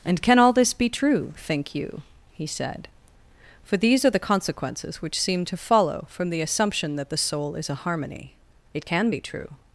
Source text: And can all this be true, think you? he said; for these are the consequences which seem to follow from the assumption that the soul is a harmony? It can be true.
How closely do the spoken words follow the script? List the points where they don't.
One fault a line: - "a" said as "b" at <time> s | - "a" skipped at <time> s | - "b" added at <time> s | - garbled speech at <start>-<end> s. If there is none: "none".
none